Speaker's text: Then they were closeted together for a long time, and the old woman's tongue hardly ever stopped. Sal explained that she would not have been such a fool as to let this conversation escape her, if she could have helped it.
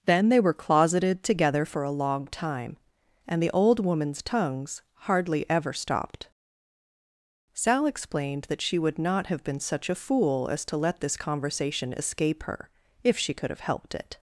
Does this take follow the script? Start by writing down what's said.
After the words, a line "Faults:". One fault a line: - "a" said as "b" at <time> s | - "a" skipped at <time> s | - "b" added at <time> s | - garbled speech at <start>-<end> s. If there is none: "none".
Then they were closeted together for a long time, and the old woman's tongues hardly ever stopped. Sal explained that she would not have been such a fool as to let this conversation escape her, if she could have helped it.
Faults:
- "tongue" said as "tongues" at 4.2 s